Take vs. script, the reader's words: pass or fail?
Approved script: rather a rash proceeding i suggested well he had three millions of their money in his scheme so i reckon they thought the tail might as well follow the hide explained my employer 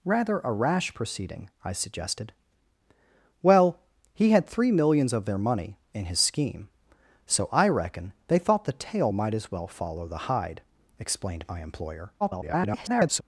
fail